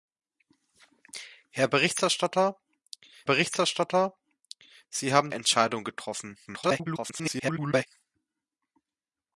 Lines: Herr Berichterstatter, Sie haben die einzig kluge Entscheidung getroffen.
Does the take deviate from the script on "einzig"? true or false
true